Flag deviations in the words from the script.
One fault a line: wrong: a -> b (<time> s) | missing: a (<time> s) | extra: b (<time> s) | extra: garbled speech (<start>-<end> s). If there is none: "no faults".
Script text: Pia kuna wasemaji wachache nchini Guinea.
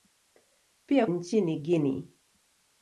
missing: kuna wasemaji wachache (1.1 s)